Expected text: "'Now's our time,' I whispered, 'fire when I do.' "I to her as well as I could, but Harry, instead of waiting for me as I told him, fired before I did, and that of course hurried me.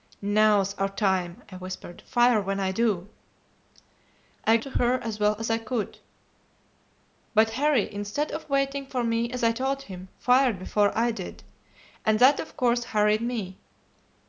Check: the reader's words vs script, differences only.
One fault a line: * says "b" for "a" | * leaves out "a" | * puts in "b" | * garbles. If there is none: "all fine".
all fine